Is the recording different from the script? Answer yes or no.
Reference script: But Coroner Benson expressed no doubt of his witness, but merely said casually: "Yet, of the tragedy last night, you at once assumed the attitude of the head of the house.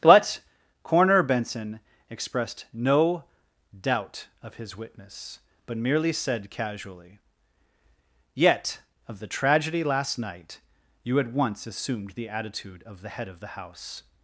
no